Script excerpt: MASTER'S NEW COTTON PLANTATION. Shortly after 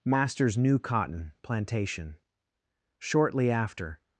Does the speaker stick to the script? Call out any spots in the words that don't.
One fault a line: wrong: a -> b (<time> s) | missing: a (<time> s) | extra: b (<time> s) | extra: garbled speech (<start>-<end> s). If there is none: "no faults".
no faults